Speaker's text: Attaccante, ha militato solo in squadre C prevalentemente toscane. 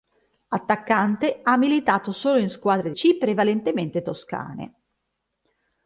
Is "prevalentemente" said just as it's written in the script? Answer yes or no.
yes